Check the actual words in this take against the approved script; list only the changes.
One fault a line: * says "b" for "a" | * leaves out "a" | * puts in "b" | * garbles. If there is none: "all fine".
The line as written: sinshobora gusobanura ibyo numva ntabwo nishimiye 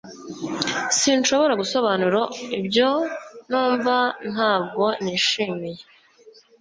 all fine